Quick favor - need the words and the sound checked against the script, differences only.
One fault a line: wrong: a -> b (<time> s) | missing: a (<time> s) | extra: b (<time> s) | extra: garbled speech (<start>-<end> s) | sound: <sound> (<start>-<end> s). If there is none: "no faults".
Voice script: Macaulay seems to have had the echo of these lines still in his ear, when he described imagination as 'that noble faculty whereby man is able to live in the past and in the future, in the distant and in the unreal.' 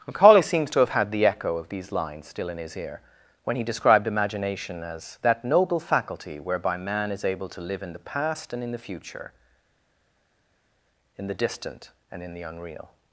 no faults